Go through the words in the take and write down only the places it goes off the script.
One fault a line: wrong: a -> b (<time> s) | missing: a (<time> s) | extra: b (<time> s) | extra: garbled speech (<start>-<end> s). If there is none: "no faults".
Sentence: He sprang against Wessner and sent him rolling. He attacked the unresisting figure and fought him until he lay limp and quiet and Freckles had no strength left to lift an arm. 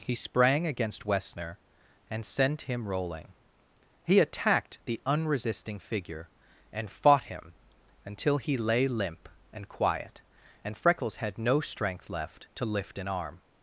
no faults